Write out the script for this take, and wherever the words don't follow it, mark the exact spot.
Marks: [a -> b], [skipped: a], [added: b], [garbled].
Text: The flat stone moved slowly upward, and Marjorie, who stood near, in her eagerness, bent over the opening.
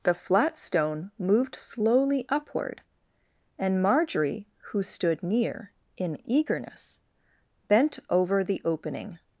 The flat stone moved slowly upward, and Marjorie, who stood near, in [skipped: her] eagerness, bent over the opening.